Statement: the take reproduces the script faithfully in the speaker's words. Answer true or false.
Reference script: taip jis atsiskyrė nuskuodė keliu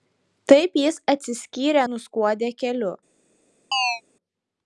true